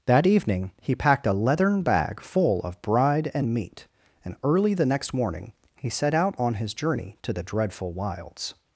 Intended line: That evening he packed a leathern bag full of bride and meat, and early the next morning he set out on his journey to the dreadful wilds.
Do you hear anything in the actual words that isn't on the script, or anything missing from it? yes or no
no